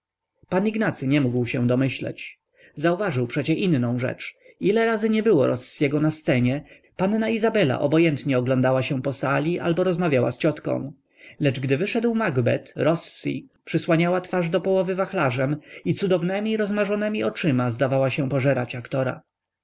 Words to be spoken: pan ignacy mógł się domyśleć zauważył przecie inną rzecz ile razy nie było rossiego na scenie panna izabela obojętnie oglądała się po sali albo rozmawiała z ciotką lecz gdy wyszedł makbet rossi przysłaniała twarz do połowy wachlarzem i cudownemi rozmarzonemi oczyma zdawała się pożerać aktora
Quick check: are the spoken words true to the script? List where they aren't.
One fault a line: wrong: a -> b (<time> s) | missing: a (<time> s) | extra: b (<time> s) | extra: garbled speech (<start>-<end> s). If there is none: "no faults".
extra: nie (1.1 s)